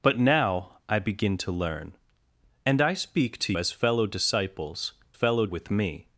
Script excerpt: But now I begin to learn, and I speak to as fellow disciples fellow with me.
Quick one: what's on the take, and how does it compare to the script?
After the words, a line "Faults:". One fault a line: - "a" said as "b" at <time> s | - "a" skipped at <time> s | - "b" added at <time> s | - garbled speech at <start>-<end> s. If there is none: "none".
But now I begin to learn, and I speak to as fellow disciples fellow with me.
Faults:
none